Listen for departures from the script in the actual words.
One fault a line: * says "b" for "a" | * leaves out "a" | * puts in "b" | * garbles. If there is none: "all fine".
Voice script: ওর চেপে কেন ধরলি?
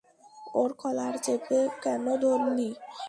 * puts in "কলার"